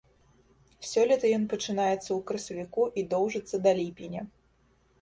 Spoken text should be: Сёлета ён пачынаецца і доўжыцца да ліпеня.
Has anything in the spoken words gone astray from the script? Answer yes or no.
yes